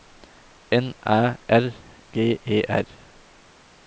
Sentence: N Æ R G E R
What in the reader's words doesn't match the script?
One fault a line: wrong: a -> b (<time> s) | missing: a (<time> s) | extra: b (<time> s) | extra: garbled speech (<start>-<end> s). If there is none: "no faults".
no faults